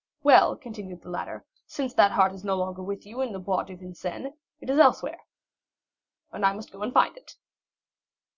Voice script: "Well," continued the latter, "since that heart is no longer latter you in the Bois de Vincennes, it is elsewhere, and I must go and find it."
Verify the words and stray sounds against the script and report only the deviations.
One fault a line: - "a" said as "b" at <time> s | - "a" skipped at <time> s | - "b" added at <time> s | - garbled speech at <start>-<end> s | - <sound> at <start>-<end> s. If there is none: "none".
- "latter" said as "with" at 2.8 s